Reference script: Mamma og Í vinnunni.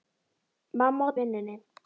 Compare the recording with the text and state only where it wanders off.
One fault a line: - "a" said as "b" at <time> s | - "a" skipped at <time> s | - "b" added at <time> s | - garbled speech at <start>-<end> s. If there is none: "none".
none